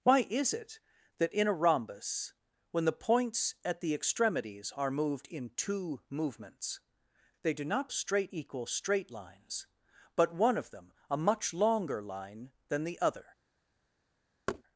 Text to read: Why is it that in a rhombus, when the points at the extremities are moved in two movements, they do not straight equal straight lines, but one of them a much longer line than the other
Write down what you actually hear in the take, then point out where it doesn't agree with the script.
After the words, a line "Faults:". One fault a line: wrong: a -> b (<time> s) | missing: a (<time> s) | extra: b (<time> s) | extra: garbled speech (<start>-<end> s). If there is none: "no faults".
Why is it that in a rhombus, when the points at the extremities are moved in two movements, they do not straight equal straight lines, but one of them a much longer line than the other
Faults:
no faults